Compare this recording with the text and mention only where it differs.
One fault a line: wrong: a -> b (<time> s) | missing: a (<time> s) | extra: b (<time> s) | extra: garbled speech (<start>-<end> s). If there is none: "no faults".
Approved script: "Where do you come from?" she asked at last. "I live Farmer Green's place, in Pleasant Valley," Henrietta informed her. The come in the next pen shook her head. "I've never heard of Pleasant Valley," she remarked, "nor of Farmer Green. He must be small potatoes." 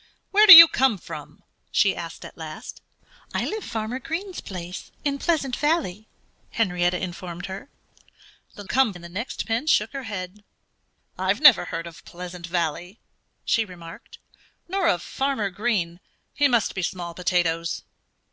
no faults